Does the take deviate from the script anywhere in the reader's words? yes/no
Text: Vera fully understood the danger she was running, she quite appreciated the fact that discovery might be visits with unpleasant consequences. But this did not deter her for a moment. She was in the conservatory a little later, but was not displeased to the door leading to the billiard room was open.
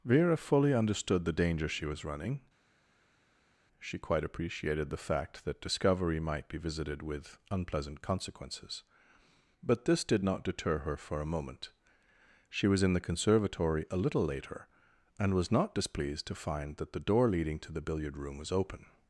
yes